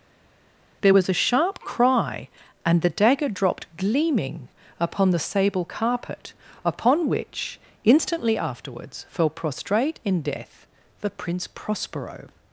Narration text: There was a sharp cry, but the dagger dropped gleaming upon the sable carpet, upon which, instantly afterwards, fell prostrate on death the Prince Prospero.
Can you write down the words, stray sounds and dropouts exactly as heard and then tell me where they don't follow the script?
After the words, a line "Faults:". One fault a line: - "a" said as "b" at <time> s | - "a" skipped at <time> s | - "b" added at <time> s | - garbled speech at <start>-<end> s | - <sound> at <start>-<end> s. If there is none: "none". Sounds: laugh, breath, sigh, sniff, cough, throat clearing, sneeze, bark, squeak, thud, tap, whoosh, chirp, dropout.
There was a sharp cry, and the dagger dropped gleaming upon the sable carpet, upon which, instantly afterwards, fell prostrate in death the Prince Prospero.
Faults:
- "but" said as "and" at 2.6 s
- "on" said as "in" at 10.0 s